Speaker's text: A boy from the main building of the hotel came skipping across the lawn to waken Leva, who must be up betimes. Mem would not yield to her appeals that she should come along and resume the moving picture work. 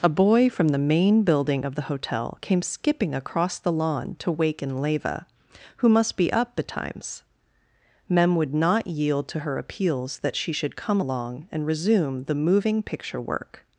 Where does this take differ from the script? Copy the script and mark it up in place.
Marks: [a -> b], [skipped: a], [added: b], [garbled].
A boy from the main building of the hotel came skipping across the lawn to waken Leva, who must be up betimes. Mem would not yield to her appeals that she should come along and resume the moving picture work.